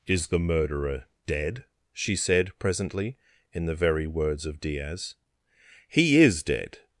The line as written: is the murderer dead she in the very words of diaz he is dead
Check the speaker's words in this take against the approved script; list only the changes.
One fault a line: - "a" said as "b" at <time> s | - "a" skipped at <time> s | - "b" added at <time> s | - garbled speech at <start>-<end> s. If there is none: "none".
- "said presently" added at 2.1 s